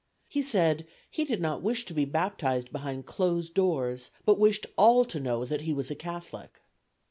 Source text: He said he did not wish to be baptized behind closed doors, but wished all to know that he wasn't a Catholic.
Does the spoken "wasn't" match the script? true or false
false